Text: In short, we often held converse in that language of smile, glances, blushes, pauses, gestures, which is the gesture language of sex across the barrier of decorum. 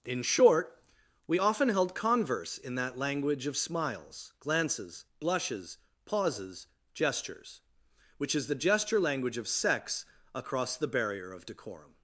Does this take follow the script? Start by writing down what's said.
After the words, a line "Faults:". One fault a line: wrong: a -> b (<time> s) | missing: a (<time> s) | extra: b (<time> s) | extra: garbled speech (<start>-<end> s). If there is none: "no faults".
In short, we often held converse in that language of smiles, glances, blushes, pauses, gestures, which is the gesture language of sex across the barrier of decorum.
Faults:
wrong: smile -> smiles (3.6 s)